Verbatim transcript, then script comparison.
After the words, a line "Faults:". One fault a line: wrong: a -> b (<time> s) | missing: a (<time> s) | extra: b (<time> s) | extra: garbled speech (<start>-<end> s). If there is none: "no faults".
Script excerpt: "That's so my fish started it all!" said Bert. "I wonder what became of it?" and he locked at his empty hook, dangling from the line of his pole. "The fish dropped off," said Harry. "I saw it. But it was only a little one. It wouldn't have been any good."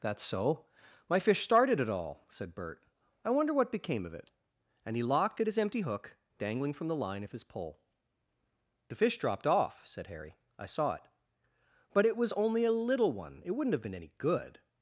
"That's so my fish started it all!" said Bert. "I wonder what became of it?" and he locked at his empty hook, dangling from the line of his pole. "The fish dropped off," said Harry. "I saw it. But it was only a little one. It wouldn't have been any good."
Faults:
no faults